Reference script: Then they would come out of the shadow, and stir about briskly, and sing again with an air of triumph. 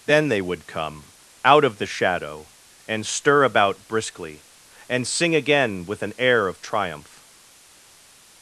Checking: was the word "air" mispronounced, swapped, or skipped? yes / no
no